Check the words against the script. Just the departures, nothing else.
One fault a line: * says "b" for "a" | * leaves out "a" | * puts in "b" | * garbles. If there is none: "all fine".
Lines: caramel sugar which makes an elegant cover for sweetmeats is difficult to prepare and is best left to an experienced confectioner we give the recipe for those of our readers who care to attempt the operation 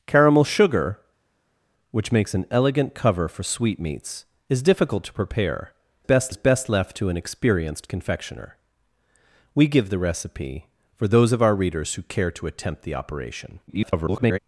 * says "best" for "and"
* garbles